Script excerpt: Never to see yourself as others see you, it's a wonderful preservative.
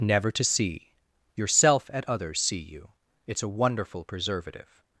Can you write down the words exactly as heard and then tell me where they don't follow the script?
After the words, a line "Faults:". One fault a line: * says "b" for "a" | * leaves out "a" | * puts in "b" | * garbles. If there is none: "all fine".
Never to see yourself at others see you, it's a wonderful preservative.
Faults:
* says "at" for "as"